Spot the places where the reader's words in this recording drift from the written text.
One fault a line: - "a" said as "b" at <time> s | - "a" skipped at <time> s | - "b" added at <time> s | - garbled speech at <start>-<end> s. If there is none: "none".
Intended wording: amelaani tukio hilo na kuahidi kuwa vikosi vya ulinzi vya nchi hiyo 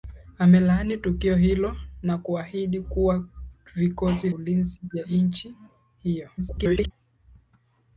- "vya" skipped at 4.3 s
- garbled speech at 6.4-6.9 s